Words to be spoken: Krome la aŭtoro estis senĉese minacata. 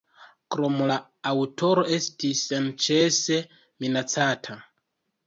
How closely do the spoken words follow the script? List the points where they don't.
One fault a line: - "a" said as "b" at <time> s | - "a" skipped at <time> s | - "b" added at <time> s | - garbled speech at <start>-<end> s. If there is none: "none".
none